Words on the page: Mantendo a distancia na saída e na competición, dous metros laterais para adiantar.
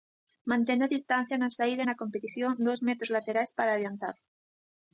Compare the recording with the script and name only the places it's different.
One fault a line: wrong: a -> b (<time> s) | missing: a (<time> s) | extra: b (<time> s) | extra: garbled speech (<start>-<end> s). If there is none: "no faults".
no faults